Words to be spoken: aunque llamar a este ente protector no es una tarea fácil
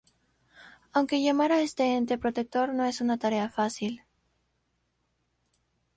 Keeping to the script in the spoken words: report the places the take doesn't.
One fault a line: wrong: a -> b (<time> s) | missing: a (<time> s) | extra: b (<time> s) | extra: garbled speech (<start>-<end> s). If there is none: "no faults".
no faults